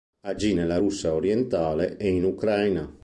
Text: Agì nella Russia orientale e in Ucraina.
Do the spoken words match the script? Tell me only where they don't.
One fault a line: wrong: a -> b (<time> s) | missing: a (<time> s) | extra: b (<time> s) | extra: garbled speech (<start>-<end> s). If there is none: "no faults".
no faults